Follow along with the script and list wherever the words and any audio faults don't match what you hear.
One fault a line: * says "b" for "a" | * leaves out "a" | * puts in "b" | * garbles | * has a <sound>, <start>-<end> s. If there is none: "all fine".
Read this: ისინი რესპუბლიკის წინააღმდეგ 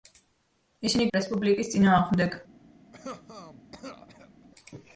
* has a cough, 2.9-4.5 s